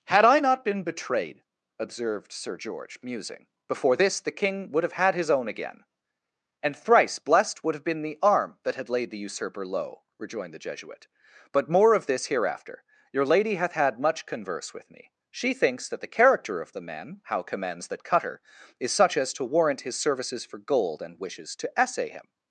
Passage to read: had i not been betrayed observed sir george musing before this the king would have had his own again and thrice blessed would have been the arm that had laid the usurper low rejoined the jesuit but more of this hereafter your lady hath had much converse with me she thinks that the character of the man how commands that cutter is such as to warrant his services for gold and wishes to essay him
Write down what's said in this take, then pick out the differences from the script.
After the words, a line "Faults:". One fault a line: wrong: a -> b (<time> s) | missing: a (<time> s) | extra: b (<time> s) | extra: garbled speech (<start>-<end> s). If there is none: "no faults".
had i not been betrayed observed sir george musing before this the king would have had his own again and thrice blessed would have been the arm that had laid the usurper low rejoined the jesuit but more of this hereafter your lady hath had much converse with me she thinks that the character of the man how commands that cutter is such as to warrant his services for gold and wishes to essay him
Faults:
no faults